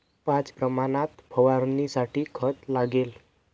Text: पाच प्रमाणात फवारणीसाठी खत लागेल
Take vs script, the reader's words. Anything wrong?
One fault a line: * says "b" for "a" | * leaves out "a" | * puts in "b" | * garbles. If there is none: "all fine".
all fine